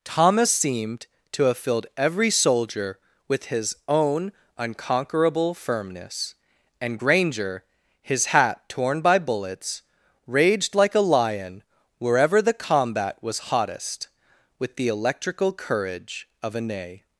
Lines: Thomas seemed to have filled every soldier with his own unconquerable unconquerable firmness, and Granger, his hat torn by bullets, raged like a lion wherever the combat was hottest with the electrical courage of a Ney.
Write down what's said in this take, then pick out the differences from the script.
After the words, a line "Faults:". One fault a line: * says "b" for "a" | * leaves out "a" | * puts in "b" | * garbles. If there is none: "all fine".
Thomas seemed to have filled every soldier with his own unconquerable firmness, and Granger, his hat torn by bullets, raged like a lion wherever the combat was hottest with the electrical courage of a Ney.
Faults:
* leaves out "unconquerable"